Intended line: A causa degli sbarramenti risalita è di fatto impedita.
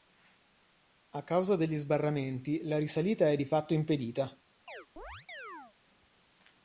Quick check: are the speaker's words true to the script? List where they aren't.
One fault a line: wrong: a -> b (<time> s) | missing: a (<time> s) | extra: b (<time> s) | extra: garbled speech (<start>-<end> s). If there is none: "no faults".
extra: la (2.6 s)